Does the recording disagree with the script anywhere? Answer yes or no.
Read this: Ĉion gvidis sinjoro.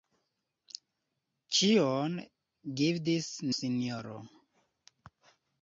no